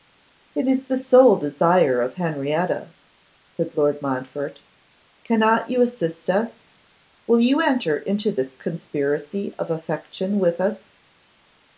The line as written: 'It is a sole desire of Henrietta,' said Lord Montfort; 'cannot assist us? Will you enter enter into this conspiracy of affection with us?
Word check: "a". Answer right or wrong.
wrong